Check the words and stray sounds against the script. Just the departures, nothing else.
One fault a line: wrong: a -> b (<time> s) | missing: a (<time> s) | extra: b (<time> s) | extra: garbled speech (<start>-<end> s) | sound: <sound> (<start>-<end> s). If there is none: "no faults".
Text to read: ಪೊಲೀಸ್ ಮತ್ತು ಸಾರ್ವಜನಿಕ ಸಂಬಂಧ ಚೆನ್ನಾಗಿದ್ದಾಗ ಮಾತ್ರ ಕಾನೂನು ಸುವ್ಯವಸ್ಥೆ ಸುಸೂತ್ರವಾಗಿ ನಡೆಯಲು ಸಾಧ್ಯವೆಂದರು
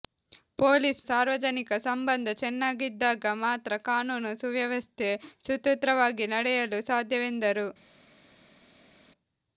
missing: ಮತ್ತು (1.0 s)